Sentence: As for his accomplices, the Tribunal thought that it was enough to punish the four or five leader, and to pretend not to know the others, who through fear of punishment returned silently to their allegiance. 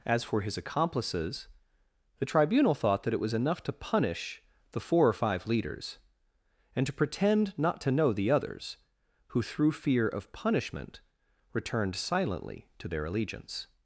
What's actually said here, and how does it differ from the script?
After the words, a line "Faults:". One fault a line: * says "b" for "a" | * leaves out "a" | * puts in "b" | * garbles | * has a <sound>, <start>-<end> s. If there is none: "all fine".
As for his accomplices, the Tribunal thought that it was enough to punish the four or five leaders, and to pretend not to know the others, who through fear of punishment returned silently to their allegiance.
Faults:
* says "leaders" for "leader"